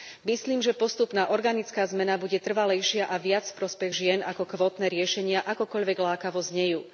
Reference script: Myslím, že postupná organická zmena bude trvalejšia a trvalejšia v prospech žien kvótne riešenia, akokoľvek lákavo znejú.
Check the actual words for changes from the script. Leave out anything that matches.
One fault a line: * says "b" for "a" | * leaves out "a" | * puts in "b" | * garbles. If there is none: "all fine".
* says "viac" for "trvalejšia"
* puts in "ako"